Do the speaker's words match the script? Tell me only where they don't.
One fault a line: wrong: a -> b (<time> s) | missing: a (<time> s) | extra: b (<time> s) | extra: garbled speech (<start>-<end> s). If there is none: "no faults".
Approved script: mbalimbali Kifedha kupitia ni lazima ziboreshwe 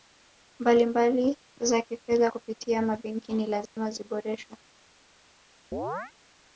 extra: za (1.6 s)
extra: mabenki (2.8 s)